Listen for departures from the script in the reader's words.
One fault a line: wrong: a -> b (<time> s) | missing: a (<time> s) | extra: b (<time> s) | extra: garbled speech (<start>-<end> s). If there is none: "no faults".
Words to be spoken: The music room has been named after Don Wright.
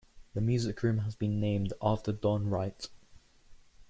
no faults